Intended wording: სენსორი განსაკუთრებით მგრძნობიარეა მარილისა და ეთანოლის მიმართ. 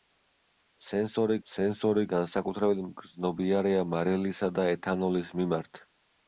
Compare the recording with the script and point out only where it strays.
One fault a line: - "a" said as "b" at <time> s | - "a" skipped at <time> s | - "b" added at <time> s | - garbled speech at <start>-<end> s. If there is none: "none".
- "სენსორი" added at 1.5 s